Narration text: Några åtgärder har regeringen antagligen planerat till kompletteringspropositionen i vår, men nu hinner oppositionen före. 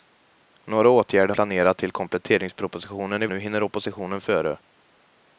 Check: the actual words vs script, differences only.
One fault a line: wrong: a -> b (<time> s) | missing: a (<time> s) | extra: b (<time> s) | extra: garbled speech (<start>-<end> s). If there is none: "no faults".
missing: har regeringen antagligen (1.4 s)
missing: vår men (3.3 s)